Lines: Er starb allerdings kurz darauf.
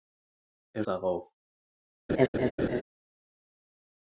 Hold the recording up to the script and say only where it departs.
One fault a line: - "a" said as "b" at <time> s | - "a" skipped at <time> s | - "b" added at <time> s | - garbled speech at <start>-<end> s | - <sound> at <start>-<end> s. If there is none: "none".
- "starb allerdings kurz" skipped at 0.8 s
- laugh at 2.1-2.8 s